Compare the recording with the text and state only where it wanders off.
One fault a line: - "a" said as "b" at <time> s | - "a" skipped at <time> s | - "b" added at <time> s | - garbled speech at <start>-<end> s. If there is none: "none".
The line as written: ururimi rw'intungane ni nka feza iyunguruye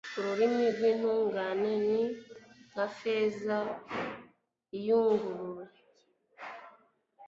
none